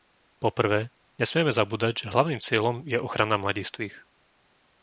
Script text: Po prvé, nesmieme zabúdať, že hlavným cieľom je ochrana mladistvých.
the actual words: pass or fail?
pass